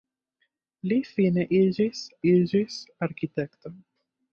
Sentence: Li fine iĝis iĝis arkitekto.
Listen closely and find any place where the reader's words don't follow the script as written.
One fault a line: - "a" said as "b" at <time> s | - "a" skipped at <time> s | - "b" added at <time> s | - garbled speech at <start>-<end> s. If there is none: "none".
none